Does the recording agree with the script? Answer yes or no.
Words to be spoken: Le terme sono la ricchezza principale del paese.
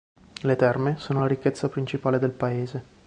yes